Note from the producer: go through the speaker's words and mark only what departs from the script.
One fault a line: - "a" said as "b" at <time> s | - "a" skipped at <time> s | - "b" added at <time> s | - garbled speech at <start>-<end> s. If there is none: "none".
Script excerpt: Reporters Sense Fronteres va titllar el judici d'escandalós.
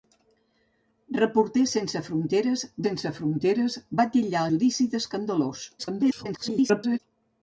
- "Sense Fronteres" added at 2.9 s
- "el" skipped at 4.4 s
- garbled speech at 5.8-7.0 s